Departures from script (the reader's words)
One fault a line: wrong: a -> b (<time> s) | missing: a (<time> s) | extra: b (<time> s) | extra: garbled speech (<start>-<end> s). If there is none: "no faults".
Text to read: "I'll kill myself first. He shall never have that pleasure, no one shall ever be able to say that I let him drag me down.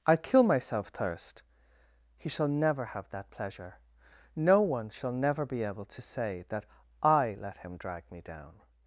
wrong: first -> thirst (0.9 s)
wrong: ever -> never (5.1 s)